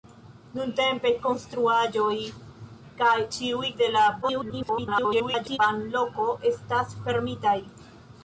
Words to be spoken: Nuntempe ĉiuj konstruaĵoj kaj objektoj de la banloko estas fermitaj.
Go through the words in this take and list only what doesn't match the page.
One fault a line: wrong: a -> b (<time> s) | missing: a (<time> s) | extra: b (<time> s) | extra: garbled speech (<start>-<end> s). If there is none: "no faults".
missing: ĉiuj (1.1 s)
wrong: objektoj -> ĉiuj (3.4 s)
extra: garbled speech (4.2-5.6 s)